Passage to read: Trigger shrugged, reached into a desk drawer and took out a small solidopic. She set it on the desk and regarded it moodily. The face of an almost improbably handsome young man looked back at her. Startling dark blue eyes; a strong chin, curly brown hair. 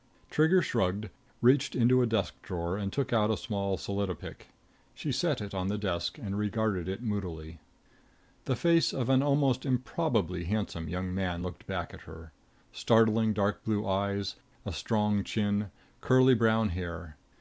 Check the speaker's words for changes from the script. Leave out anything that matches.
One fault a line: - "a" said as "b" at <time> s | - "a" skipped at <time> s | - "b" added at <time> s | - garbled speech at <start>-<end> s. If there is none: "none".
none